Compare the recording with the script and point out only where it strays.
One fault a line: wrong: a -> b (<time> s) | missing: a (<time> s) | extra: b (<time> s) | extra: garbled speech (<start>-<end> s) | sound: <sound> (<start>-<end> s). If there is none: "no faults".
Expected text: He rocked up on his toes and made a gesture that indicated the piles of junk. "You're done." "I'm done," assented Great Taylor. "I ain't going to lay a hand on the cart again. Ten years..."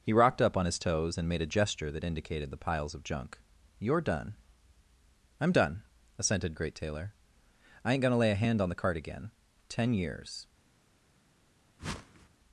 sound: whoosh (11.8-12.3 s)